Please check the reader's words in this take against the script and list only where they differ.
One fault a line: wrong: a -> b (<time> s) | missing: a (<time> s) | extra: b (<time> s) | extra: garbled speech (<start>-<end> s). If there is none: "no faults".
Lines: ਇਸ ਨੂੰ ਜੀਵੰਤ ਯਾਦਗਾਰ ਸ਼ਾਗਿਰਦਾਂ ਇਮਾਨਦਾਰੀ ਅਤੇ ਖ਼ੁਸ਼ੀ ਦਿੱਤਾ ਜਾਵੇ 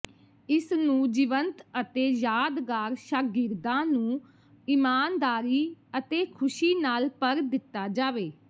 extra: ਅਤੇ (1.8 s)
extra: ਨੂੰ (3.9 s)
extra: ਨਾਲ ਭਰ (6.8 s)